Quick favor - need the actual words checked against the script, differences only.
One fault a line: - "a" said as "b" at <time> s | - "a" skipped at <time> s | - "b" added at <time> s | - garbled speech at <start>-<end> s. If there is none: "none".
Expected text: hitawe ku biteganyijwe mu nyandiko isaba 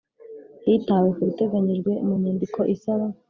none